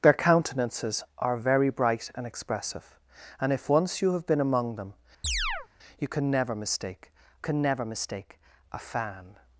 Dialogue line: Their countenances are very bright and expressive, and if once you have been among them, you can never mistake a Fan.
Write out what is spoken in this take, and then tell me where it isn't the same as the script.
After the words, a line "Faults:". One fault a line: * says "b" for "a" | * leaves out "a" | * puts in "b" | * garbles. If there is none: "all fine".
Their countenances are very bright and expressive, and if once you have been among them, you can never mistake can never mistake a Fan.
Faults:
* puts in "can never mistake"